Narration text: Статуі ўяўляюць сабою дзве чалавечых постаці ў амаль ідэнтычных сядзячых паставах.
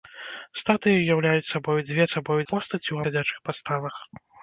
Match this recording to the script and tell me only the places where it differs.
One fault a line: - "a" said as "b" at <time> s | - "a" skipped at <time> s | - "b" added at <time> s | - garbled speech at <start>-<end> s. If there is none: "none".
- "чалавечых" said as "сабою" at 2.1 s
- "амаль ідэнтычных" skipped at 3.0 s